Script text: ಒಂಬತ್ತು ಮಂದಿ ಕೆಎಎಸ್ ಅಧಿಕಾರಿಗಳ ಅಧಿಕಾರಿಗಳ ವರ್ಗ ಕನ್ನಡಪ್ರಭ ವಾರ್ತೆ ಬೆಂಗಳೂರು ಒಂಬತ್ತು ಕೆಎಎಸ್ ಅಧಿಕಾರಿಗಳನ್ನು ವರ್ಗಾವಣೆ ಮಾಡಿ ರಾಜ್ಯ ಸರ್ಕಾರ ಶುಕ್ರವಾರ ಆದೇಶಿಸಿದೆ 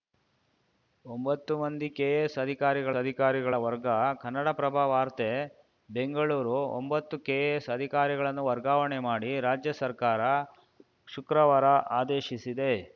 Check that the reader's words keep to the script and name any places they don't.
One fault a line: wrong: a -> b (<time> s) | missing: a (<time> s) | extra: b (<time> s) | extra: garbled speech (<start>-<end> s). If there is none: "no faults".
no faults